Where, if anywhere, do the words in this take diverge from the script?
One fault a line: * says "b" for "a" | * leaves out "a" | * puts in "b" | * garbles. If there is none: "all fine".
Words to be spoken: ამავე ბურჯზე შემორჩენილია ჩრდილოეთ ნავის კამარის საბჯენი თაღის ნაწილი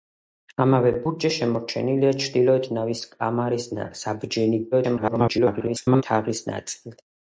* garbles